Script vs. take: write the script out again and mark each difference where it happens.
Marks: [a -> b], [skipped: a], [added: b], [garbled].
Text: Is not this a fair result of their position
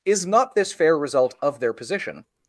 Is not this [skipped: a] fair result of their position